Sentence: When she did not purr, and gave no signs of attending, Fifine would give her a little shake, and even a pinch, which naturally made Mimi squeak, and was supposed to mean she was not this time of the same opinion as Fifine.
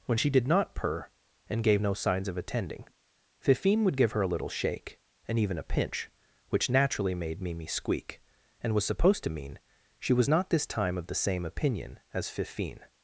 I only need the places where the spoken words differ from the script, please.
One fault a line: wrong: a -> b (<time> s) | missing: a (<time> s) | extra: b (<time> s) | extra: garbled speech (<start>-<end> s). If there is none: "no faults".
no faults